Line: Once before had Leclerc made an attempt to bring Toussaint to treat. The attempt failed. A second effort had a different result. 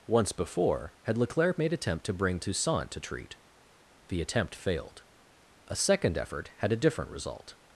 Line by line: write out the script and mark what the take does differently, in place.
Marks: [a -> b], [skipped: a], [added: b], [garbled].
Once before had Leclerc made [skipped: an] attempt to bring Toussaint to treat. The attempt failed. A second effort had a different result.